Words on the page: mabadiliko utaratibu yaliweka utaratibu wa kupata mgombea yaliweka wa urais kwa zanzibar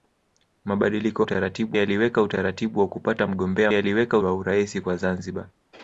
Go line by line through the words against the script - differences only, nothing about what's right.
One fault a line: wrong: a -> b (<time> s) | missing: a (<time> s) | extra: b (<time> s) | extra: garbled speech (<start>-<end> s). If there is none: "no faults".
no faults